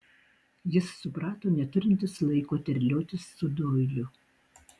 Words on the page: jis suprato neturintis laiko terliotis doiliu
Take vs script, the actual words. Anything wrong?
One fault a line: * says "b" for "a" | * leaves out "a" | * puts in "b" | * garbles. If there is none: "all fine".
* puts in "su"